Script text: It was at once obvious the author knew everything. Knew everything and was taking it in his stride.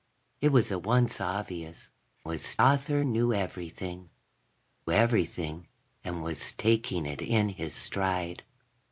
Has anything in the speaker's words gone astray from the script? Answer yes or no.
yes